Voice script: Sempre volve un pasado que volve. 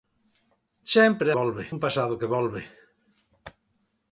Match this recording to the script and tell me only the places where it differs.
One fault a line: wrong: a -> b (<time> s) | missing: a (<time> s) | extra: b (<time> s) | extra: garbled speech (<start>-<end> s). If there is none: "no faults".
no faults